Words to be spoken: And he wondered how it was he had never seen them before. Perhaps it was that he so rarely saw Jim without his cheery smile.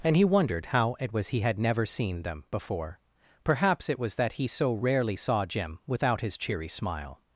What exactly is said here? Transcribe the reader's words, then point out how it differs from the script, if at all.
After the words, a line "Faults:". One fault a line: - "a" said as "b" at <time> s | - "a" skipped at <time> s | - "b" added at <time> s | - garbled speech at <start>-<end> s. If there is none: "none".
And he wondered how it was he had never seen them before. Perhaps it was that he so rarely saw Jim without his cheery smile.
Faults:
none